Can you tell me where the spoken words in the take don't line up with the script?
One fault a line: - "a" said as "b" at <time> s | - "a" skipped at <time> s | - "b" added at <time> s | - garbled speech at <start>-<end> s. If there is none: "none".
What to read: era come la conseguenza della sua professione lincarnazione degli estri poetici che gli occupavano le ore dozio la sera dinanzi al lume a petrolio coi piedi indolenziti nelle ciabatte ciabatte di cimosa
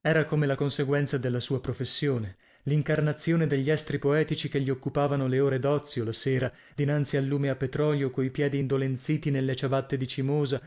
- "ciabatte" skipped at 9.9 s